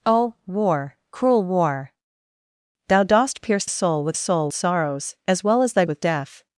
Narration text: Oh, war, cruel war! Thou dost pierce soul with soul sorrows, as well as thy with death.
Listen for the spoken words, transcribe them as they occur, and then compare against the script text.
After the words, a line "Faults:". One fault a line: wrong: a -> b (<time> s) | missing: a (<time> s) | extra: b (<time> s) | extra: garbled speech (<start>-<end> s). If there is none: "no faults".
Oh, war, cruel war! Thou dost pierce soul with soul sorrows, as well as thy with death.
Faults:
no faults